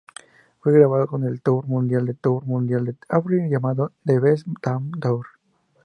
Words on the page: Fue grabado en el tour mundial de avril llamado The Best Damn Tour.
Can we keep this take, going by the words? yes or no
no